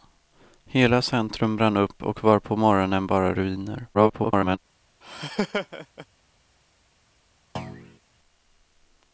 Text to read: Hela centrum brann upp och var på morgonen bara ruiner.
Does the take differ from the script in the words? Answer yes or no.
yes